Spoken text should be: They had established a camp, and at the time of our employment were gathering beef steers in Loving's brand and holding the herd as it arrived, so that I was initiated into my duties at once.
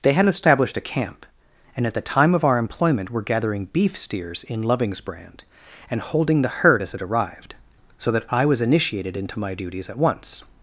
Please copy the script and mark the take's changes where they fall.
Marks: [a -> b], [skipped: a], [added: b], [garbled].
They had established a camp, and at the time of our employment were gathering beef steers in Loving's brand and holding the herd as it arrived, so that I was initiated into my duties at once.